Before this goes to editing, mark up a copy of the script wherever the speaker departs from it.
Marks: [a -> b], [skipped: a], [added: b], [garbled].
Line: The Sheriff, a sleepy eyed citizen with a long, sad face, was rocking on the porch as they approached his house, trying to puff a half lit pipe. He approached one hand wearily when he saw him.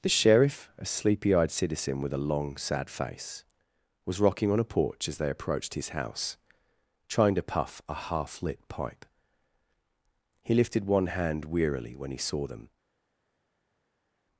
The Sheriff, a sleepy eyed citizen with a long, sad face, was rocking on [the -> a] porch as they approached his house, trying to puff a half lit pipe. He [approached -> lifted] one hand wearily when he saw [him. -> them]